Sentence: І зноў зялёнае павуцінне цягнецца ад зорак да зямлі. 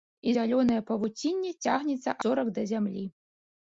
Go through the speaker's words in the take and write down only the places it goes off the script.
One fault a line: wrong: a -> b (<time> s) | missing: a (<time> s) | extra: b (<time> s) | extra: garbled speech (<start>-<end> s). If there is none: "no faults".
missing: зноў (0.3 s)
missing: ад (2.2 s)